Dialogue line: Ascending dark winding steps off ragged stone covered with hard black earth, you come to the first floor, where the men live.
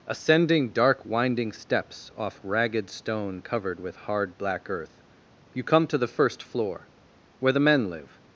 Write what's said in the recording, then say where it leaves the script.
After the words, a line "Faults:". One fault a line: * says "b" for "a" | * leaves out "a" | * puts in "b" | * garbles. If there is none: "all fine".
Ascending dark winding steps off ragged stone covered with hard black earth, you come to the first floor, where the men live.
Faults:
all fine